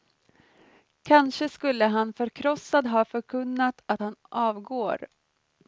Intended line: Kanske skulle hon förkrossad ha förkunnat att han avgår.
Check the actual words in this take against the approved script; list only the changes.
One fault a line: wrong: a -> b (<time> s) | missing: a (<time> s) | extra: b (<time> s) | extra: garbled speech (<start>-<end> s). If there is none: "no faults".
wrong: hon -> han (1.9 s)